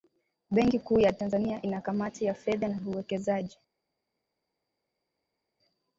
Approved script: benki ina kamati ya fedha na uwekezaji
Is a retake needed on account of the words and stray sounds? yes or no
yes